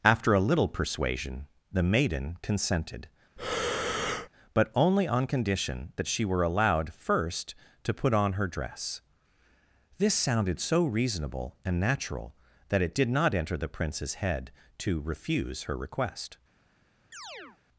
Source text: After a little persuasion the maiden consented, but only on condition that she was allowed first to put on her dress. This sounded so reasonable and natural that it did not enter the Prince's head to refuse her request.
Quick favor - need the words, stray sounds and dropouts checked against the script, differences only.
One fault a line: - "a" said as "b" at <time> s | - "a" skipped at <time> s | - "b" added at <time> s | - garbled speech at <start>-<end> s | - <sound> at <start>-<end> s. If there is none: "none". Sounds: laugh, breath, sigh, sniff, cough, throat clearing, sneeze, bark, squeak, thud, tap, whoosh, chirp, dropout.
- breath at 3.4-4.3 s
- "was" said as "were" at 6.2 s
- chirp at 17.1-17.6 s